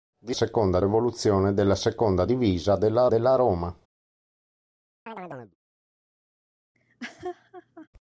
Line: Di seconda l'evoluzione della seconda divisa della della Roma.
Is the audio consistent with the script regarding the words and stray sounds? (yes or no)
no